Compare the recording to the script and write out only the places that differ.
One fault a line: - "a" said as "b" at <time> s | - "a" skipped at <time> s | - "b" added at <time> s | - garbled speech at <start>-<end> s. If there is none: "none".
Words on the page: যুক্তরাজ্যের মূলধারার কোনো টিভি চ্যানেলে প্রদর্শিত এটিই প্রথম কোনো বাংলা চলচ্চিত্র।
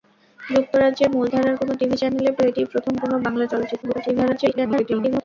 - "প্রদর্শিত" skipped at 2.3 s
- garbled speech at 3.8-5.2 s